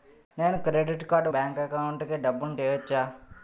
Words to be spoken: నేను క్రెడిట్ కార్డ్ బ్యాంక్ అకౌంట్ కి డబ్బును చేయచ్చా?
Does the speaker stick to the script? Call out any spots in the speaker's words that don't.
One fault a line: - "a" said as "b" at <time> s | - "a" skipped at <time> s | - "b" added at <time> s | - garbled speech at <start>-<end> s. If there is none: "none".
none